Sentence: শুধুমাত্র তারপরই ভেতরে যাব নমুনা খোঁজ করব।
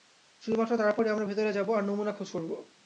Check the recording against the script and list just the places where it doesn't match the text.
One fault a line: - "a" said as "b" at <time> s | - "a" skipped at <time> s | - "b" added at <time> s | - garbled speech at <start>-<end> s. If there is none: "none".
- "আমরা" added at 1.1 s
- "আর" added at 1.7 s